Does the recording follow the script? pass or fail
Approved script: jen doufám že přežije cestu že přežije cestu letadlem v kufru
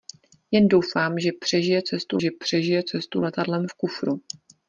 pass